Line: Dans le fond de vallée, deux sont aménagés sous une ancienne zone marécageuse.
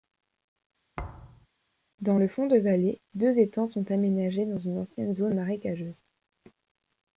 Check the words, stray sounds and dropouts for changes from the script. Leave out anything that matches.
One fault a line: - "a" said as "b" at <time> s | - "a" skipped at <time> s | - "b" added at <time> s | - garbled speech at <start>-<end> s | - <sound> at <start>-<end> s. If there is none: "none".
- thud at 1.0-1.5 s
- "étangs" added at 3.4 s
- "sous" said as "dans" at 4.4 s